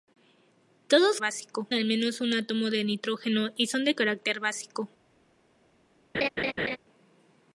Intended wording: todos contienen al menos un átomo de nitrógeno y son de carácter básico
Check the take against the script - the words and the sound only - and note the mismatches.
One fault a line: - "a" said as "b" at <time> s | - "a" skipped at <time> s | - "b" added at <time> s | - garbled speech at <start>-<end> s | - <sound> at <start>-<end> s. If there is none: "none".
- "contienen" said as "básico" at 1.2 s
- laugh at 6.1-6.8 s